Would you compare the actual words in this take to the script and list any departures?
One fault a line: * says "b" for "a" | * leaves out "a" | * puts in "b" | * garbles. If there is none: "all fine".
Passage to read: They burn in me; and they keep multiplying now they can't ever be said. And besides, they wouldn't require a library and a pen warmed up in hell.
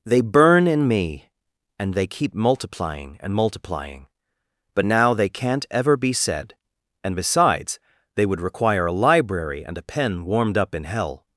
* puts in "and multiplying but"
* says "would" for "wouldn't"